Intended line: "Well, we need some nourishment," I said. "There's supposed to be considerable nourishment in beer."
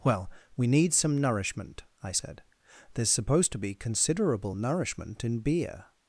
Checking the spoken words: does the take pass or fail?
pass